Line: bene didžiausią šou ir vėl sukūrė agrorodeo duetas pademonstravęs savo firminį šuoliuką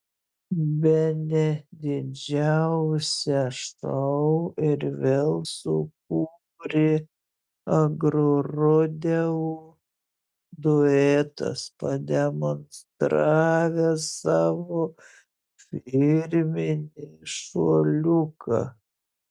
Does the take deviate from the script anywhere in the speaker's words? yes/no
no